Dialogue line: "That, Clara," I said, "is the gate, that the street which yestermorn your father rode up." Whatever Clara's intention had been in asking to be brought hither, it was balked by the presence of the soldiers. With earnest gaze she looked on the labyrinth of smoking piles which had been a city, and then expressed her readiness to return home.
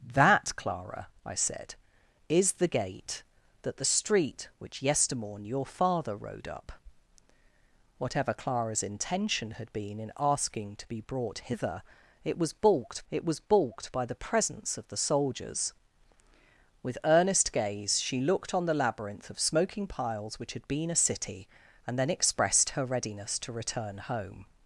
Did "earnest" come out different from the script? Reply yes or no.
no